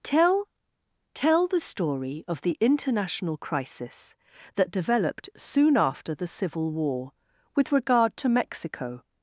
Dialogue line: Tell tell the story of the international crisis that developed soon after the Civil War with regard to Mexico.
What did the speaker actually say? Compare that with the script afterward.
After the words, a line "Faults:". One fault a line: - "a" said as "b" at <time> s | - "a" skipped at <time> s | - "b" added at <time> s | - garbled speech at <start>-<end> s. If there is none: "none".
Tell tell the story of the international crisis that developed soon after the Civil War with regard to Mexico.
Faults:
none